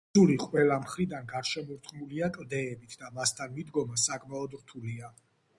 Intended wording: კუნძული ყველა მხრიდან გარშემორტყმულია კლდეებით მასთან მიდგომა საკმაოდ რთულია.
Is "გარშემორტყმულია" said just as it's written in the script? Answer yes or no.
yes